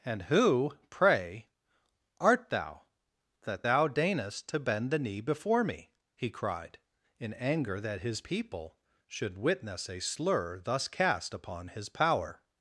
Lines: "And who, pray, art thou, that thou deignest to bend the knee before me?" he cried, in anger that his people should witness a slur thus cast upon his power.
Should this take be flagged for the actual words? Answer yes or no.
no